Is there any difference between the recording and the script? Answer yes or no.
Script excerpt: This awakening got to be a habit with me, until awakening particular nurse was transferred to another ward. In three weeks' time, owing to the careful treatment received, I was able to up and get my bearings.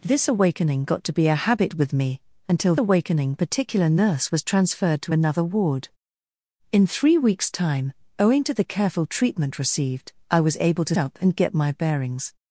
no